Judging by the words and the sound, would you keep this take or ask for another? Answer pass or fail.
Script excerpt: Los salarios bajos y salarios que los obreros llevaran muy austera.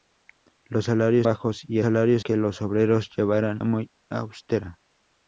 pass